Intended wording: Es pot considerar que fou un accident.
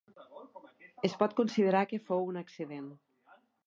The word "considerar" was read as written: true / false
true